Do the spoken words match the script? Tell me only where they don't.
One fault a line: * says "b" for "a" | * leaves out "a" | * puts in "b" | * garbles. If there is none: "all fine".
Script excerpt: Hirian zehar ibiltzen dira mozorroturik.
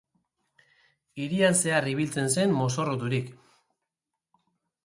* says "zen" for "dira"